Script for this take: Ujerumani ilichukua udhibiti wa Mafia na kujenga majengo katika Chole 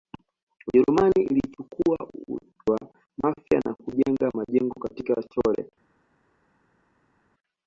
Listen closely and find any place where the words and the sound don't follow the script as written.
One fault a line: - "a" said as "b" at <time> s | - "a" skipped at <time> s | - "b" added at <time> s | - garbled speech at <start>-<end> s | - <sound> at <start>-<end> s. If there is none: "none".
- "udhibiti" skipped at 2.0 s